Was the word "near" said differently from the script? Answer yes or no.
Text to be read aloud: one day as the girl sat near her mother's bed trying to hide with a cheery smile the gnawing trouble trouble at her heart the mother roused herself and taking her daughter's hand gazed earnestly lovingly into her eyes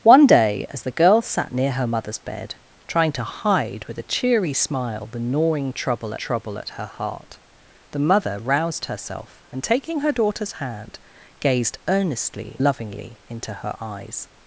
no